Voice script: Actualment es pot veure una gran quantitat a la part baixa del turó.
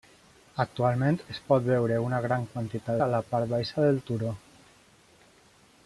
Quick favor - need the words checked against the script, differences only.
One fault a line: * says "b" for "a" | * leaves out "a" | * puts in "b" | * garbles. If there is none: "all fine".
all fine